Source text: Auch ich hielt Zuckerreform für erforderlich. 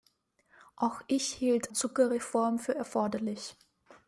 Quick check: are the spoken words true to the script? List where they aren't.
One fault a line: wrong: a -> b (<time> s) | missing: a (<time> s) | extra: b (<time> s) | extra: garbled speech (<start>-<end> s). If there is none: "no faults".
no faults